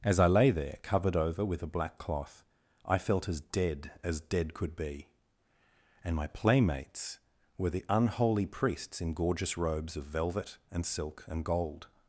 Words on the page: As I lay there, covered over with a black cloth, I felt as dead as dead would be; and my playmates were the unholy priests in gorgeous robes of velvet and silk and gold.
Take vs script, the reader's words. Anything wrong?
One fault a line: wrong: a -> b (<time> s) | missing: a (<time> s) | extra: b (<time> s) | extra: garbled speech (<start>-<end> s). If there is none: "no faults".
wrong: would -> could (4.5 s)